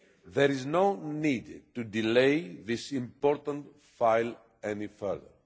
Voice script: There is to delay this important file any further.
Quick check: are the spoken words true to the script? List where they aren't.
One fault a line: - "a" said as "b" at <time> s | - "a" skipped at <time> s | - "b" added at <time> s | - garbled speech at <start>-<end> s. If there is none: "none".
- "no need" added at 0.7 s